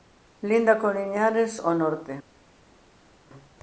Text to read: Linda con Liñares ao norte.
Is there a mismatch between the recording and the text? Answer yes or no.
no